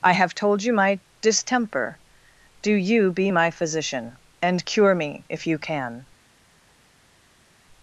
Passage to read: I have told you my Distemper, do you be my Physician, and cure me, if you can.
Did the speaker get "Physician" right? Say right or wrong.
right